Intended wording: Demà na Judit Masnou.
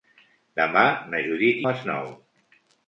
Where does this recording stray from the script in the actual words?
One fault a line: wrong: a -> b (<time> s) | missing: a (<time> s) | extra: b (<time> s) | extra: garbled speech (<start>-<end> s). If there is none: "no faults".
no faults